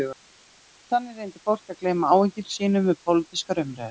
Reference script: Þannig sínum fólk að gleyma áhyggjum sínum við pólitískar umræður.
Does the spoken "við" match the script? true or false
true